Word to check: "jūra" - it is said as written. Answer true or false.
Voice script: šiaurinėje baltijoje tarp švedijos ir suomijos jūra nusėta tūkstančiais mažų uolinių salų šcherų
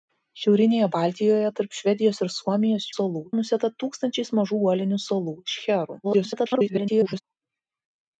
false